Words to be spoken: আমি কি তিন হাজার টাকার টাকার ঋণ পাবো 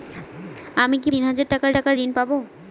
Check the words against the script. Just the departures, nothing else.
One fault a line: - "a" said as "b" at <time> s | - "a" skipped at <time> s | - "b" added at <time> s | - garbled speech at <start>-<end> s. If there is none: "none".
none